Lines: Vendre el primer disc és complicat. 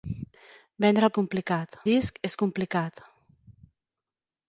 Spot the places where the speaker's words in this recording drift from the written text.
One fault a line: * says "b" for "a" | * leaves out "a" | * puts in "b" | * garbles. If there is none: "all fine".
* says "complicat" for "primer"